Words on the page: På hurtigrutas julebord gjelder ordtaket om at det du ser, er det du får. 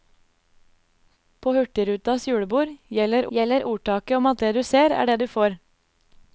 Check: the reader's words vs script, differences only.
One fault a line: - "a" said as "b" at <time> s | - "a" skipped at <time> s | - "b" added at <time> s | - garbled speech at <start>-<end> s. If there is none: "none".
- "gjelder" added at 3.4 s